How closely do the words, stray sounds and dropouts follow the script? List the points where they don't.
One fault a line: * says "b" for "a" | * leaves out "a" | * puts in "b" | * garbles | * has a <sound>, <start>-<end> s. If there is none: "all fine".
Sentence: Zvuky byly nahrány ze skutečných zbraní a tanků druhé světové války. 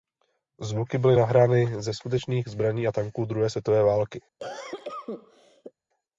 * has a cough, 4.4-5.7 s